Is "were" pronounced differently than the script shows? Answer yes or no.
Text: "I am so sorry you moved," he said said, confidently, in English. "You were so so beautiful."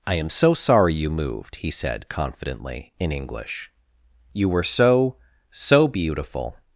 no